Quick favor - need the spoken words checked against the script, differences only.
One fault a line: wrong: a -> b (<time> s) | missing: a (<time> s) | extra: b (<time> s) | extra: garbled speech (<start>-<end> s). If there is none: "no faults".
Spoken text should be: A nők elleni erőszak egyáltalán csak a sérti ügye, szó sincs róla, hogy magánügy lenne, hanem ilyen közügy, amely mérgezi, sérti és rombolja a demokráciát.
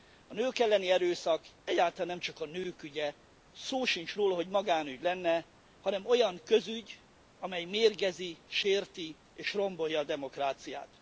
extra: nem (2.1 s)
wrong: sérti -> nők (2.5 s)
wrong: ilyen -> olyan (6.0 s)